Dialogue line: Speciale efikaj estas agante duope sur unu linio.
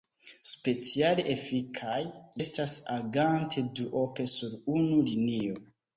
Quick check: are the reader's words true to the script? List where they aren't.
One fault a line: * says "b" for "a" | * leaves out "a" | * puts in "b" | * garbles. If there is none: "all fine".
all fine